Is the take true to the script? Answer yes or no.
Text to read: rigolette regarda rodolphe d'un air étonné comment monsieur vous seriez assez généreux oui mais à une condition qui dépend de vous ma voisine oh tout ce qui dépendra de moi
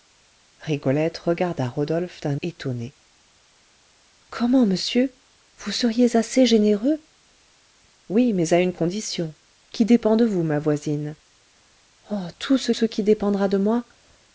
no